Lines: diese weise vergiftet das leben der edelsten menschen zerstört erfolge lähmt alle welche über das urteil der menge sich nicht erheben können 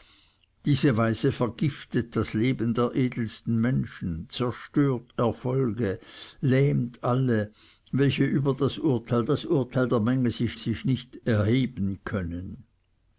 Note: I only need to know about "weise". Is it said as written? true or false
true